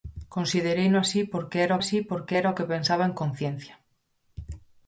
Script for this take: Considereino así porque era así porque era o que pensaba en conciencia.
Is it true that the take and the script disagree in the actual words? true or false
false